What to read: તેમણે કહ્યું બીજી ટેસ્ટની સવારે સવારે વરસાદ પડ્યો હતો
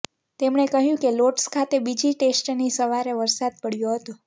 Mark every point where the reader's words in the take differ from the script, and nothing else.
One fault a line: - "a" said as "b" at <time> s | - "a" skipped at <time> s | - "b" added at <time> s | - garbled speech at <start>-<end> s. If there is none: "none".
- "કે લોર્ડ્સ ખાતે" added at 1.0 s
- "સવારે" skipped at 3.2 s